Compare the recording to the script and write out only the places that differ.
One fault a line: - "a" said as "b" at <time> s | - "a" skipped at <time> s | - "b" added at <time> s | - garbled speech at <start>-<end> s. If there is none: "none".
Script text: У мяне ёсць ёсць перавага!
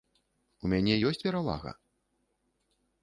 - "ёсць" skipped at 1.2 s